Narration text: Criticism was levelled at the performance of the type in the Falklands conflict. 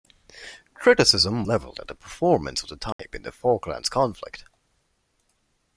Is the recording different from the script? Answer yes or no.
yes